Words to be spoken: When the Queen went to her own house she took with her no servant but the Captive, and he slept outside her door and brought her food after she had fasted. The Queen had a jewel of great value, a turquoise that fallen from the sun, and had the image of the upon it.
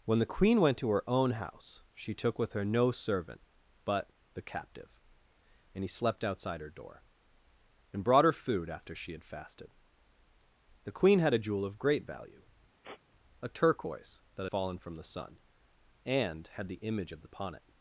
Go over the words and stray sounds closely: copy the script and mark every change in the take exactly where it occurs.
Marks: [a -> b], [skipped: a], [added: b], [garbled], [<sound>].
When the Queen went to her own house she took with her no servant but the Captive, and he slept outside her door and brought her food after she had fasted. The Queen had a jewel of great value, [sniff] a turquoise that fallen from the sun, and had the image of the upon it.